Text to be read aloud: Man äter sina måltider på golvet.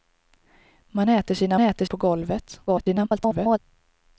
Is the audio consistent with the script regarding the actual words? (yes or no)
no